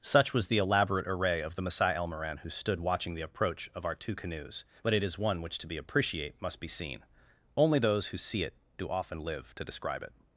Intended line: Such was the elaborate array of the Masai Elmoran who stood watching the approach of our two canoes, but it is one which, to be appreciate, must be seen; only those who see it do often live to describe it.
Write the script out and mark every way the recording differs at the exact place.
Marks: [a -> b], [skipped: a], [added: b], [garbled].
Such was the elaborate array of the Masai Elmoran who stood watching the approach of our two canoes, but it is one which, to be appreciate, must be seen; only those who see it do often live to describe it.